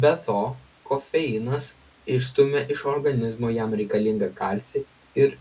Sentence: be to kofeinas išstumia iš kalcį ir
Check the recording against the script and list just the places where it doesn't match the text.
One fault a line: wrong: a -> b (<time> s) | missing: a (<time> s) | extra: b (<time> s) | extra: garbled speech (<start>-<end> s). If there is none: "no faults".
extra: organizmo jam reikalingą (2.9 s)